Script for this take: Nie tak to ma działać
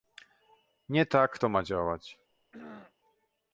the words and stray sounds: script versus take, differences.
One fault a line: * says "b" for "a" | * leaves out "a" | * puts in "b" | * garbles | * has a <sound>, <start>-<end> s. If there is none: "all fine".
* has a throat clearing, 2.3-2.9 s